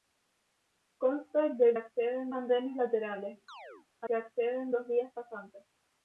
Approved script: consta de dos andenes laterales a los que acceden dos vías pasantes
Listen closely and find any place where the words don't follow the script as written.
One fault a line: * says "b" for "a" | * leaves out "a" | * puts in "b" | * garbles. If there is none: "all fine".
* says "acceden" for "dos"
* leaves out "los"